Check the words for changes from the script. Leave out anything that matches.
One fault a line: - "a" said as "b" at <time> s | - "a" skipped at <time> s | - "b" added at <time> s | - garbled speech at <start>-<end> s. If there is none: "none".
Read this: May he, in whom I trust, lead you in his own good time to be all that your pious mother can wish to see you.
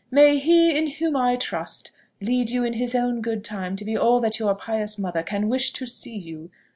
none